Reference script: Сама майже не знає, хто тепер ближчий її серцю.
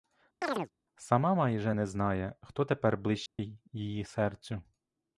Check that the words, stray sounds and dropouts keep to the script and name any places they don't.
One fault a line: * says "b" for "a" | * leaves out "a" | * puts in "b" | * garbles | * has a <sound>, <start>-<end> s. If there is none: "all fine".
* has a chirp, 0.4-0.7 s
* has a dropout, 3.3-3.4 s